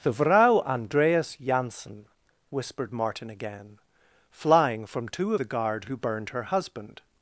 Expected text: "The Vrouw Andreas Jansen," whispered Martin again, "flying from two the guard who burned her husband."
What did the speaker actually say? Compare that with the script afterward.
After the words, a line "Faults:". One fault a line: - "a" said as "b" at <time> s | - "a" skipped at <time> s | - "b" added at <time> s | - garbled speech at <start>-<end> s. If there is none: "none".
"The Vrouw Andreas Jansen," whispered Martin again, "flying from two the guard who burned her husband."
Faults:
none